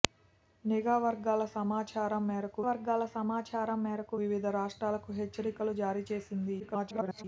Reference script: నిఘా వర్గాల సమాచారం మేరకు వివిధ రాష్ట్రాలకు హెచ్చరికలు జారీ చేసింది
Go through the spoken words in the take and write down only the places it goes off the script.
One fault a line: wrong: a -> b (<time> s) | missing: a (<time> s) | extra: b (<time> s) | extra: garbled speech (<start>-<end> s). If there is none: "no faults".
extra: వర్గాల సమాచారం మేరకు (2.7 s)
extra: garbled speech (6.6-7.2 s)